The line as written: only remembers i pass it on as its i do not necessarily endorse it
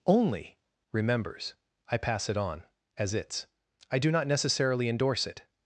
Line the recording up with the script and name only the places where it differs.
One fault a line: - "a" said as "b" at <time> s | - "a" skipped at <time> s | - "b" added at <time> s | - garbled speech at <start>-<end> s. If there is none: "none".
none